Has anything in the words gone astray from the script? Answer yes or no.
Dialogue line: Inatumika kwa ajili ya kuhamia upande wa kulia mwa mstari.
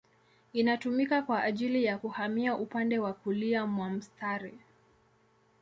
no